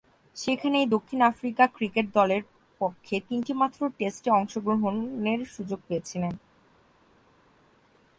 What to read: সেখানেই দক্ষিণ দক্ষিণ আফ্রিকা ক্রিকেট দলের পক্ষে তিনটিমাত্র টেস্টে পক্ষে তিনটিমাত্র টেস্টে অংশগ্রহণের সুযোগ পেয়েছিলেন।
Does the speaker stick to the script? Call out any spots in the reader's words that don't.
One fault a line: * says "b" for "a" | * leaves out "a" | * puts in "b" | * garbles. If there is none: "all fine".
* leaves out "দক্ষিণ"
* leaves out "পক্ষে তিনটিমাত্র টেস্টে"